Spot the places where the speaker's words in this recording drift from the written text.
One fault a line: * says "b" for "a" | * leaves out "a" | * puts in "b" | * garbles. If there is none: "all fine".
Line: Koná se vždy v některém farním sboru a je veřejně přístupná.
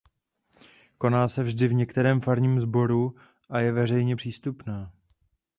all fine